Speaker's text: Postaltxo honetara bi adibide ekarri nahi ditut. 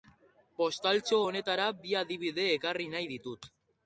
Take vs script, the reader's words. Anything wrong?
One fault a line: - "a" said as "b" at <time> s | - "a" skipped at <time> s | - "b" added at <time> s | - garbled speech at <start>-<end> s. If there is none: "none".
none